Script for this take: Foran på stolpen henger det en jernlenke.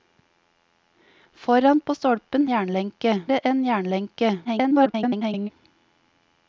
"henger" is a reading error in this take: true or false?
true